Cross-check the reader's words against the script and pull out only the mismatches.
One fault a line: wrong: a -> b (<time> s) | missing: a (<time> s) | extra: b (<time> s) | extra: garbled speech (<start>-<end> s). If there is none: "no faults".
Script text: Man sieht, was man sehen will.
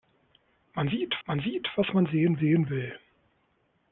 extra: man sieht (1.2 s)
extra: sehen (2.4 s)